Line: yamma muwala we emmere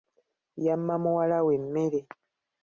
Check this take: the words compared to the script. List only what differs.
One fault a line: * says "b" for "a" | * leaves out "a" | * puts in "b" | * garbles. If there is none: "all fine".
all fine